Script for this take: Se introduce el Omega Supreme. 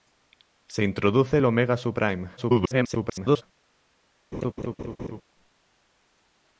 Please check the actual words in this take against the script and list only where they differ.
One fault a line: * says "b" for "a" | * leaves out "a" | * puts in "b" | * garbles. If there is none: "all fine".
* garbles